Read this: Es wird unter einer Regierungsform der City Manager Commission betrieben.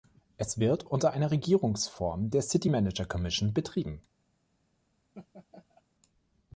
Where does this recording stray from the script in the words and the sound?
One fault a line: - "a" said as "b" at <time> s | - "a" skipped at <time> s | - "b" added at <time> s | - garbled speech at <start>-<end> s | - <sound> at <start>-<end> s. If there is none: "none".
- laugh at 5.1-5.8 s